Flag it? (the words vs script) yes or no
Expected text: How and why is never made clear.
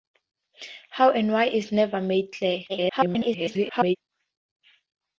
yes